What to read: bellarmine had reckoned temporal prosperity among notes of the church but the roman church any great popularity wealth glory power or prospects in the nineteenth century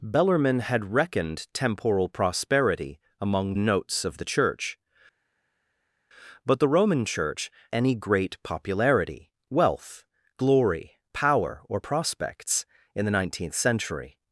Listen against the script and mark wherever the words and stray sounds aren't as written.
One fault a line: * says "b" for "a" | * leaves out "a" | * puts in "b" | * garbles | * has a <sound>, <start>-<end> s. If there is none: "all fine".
all fine